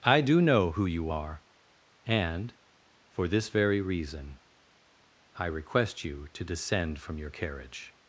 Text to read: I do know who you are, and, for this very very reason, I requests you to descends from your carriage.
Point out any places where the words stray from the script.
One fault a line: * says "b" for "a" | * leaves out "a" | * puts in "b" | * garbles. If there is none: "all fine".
* leaves out "very"
* says "request" for "requests"
* says "descend" for "descends"